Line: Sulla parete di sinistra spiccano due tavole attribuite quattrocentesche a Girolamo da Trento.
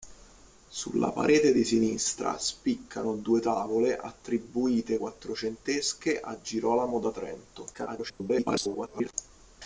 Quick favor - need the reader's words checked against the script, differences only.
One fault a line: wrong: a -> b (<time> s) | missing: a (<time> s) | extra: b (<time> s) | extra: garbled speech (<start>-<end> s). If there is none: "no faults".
extra: garbled speech (7.7-9.1 s)